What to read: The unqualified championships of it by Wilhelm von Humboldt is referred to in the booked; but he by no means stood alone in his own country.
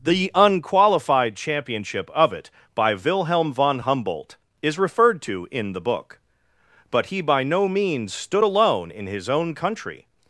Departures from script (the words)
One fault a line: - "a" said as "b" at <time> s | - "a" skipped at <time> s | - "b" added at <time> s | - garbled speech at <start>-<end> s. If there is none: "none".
- "championships" said as "championship" at 1.4 s
- "booked" said as "book" at 5.8 s